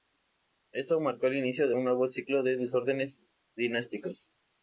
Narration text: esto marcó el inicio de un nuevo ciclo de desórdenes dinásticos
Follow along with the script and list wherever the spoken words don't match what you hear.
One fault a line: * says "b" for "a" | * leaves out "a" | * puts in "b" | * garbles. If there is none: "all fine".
all fine